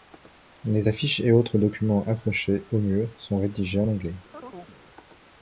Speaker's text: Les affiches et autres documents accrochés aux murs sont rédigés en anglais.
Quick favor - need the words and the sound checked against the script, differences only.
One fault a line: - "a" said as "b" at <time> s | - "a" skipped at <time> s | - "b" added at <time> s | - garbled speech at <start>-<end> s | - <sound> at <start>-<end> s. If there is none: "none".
- chirp at 4.3-4.8 s